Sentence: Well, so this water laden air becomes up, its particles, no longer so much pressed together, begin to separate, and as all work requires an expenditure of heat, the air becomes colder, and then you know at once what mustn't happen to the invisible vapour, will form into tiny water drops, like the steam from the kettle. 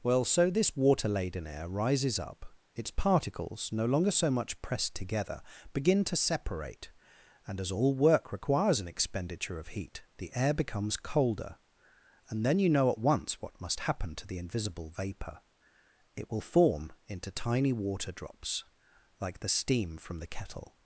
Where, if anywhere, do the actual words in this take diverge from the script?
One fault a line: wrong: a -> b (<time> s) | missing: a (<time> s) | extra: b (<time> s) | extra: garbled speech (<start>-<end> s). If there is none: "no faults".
wrong: becomes -> rises (1.7 s)
wrong: mustn't -> must (13.6 s)
extra: it (16.1 s)